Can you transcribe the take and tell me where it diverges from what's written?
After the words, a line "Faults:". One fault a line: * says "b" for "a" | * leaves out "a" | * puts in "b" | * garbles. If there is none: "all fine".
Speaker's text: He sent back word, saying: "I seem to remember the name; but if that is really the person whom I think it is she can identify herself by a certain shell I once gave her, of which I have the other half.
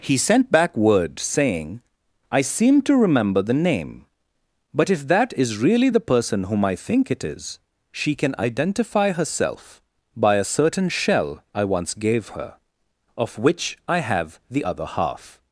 He sent back word, saying: "I seem to remember the name; but if that is really the person whom I think it is she can identify herself by a certain shell I once gave her, of which I have the other half.
Faults:
all fine